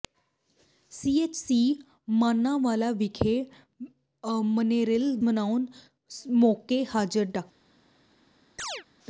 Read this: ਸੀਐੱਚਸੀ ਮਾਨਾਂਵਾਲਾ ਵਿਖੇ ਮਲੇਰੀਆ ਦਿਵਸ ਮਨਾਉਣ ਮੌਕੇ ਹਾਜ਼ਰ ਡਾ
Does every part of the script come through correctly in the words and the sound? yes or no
no